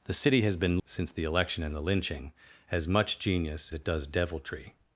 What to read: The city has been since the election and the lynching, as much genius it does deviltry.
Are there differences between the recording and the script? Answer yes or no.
no